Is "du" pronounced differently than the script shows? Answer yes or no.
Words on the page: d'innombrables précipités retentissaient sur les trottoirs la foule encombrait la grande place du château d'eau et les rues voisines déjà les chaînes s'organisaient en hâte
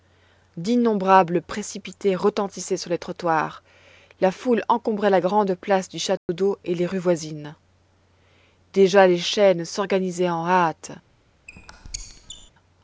no